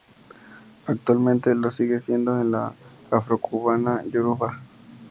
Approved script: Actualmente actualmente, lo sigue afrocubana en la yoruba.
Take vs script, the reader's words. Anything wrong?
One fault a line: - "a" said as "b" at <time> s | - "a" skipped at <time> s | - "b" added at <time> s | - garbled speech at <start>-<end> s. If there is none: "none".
- "actualmente" skipped at 1.5 s
- "afrocubana" said as "siendo" at 2.0 s
- "afrocubana" added at 3.1 s